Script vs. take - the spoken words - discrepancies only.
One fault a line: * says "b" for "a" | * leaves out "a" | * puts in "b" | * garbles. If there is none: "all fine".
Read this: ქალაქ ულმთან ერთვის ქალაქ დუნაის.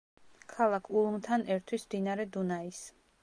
* says "მდინარე" for "ქალაქ"